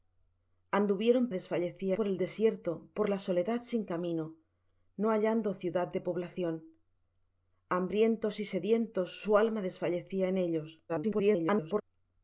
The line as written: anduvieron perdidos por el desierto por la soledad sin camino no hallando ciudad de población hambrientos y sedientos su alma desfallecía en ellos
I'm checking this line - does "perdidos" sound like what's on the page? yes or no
no